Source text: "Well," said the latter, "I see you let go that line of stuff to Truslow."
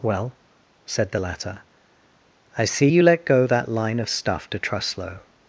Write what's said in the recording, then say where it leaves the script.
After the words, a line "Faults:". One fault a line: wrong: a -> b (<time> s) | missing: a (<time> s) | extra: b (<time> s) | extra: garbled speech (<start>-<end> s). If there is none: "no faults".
"Well," said the latter, "I see you let go that line of stuff to Truslow."
Faults:
no faults